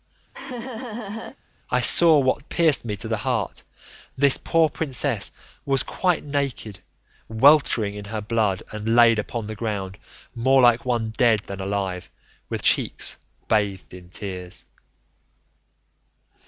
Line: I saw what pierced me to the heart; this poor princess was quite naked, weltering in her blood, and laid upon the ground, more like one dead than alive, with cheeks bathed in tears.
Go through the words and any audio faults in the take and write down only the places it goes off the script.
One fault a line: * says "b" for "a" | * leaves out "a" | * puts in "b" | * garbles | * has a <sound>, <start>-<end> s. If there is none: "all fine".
* has a laugh, 0.3-1.4 s